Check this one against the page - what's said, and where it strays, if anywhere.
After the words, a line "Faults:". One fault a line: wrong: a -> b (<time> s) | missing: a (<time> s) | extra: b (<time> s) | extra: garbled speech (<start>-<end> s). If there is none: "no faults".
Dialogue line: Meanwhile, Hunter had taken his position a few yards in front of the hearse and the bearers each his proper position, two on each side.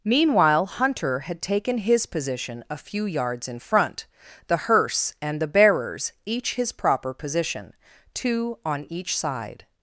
Meanwhile, Hunter had taken his position a few yards in front the hearse and the bearers each his proper position, two on each side.
Faults:
missing: of (4.1 s)